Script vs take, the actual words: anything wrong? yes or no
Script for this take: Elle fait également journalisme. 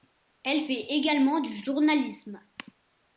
yes